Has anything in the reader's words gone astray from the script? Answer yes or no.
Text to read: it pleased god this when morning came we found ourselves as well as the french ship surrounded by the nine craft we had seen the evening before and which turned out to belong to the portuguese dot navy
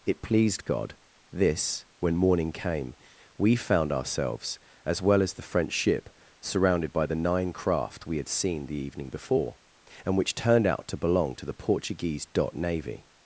no